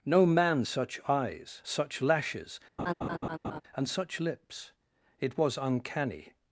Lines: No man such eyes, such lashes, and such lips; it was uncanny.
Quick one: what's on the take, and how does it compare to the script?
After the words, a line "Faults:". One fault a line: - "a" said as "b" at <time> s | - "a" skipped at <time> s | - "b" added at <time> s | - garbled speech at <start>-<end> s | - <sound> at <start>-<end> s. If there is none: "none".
No man such eyes, such lashes, and such lips; it was uncanny.
Faults:
- laugh at 2.8-3.6 s